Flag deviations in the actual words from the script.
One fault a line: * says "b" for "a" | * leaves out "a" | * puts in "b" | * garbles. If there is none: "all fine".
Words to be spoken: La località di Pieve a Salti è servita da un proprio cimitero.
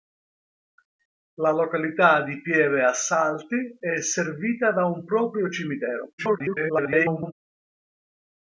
* garbles